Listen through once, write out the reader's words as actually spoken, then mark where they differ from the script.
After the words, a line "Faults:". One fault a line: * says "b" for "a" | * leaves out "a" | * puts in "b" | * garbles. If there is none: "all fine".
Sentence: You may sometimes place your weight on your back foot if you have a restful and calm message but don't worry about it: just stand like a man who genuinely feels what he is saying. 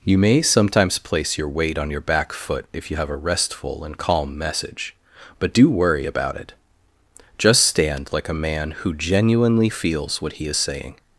You may sometimes place your weight on your back foot if you have a restful and calm message but do worry about it: just stand like a man who genuinely feels what he is saying.
Faults:
* says "do" for "don't"